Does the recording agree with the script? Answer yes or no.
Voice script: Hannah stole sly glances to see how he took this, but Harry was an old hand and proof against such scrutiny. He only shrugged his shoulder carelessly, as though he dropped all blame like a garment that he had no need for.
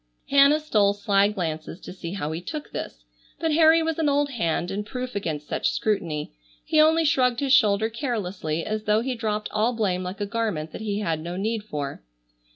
yes